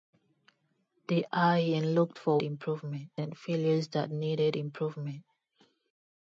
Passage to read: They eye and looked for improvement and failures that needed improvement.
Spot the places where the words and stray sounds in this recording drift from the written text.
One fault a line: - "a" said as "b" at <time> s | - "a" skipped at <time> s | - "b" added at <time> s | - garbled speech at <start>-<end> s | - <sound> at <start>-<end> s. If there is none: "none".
none